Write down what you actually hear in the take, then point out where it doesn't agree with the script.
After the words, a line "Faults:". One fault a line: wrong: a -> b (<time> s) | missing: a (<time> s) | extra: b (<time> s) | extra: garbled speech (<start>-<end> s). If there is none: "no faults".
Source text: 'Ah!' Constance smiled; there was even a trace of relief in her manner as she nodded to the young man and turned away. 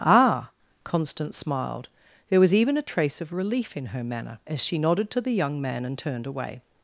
'Ah!' Constance smiled; there was even a trace of relief in her manner as she nodded to the young man and turned away.
Faults:
no faults